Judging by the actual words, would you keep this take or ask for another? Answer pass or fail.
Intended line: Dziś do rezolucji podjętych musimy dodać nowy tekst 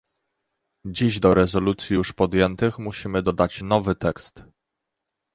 fail